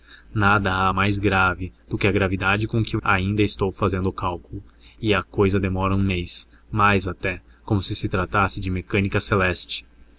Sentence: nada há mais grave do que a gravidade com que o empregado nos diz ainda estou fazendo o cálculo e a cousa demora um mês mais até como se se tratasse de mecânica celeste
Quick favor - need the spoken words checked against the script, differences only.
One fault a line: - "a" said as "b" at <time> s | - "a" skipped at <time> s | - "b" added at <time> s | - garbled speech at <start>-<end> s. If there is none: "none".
- "empregado nos diz" skipped at 3.0 s